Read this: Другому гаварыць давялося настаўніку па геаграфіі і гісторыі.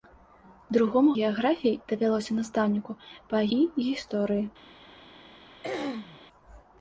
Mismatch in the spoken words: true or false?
true